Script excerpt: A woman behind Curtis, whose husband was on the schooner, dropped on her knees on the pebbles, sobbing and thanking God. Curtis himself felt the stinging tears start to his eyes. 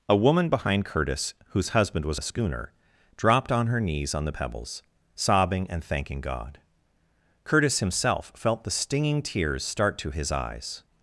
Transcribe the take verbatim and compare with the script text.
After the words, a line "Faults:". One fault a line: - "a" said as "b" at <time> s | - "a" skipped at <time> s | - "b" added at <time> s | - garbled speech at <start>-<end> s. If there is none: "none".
A woman behind Curtis, whose husband was the schooner, dropped on her knees on the pebbles, sobbing and thanking God. Curtis himself felt the stinging tears start to his eyes.
Faults:
- "on" skipped at 2.2 s